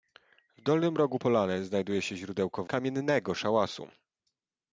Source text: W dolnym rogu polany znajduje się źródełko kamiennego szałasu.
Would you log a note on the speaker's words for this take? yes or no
no